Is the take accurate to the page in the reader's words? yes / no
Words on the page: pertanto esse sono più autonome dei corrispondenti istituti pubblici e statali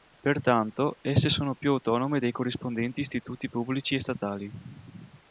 yes